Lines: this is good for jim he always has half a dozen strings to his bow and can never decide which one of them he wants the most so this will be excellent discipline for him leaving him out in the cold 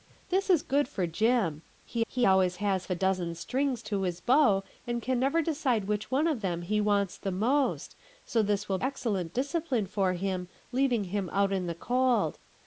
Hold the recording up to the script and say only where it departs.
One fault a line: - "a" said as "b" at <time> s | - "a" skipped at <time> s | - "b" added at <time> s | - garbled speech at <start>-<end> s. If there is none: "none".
- "he" added at 2.1 s
- "half" skipped at 2.8 s
- "be" skipped at 8.8 s